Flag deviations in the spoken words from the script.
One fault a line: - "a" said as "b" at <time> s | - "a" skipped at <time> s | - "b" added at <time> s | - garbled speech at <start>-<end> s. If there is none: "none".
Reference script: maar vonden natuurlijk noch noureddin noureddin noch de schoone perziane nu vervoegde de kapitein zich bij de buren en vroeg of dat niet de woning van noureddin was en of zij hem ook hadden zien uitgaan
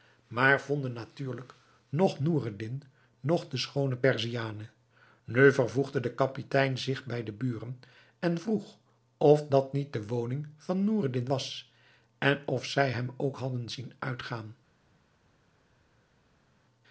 - "noureddin" skipped at 2.8 s